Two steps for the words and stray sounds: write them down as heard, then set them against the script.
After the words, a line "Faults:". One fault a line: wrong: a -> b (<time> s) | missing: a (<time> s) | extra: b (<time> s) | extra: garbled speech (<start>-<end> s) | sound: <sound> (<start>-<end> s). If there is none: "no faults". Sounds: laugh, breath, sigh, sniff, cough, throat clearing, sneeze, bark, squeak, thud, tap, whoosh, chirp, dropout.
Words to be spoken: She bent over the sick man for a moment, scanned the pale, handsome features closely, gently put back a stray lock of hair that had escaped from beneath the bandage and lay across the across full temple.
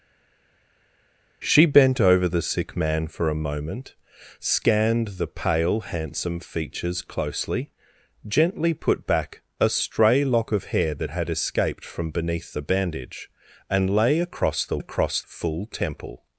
She bent over the sick man for a moment, scanned the pale, handsome features closely, gently put back a stray lock of hair that had escaped from beneath the bandage and lay across the across full temple.
Faults:
no faults